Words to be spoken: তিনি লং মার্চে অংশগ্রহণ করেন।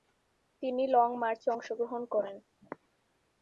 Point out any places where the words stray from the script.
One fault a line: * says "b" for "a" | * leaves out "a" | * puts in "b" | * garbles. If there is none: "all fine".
all fine